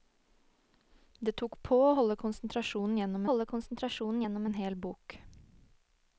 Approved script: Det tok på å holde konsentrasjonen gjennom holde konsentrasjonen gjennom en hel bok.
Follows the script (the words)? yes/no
yes